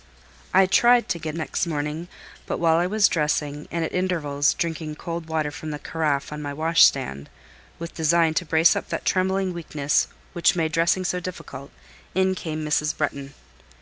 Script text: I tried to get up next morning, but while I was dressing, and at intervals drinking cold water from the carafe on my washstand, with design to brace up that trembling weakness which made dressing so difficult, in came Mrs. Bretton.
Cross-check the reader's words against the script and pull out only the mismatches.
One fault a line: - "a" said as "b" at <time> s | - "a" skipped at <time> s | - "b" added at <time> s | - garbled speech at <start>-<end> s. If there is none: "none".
- "up" skipped at 1.4 s